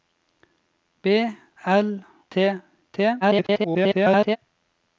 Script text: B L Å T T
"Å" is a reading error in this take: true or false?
true